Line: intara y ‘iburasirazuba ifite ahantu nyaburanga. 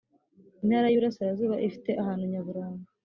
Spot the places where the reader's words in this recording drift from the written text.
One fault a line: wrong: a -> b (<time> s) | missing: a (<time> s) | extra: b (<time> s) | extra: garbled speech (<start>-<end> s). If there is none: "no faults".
no faults